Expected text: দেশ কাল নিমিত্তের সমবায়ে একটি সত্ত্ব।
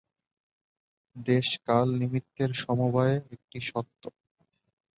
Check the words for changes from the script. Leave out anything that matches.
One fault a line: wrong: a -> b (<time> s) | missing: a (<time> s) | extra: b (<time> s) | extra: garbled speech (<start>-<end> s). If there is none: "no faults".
no faults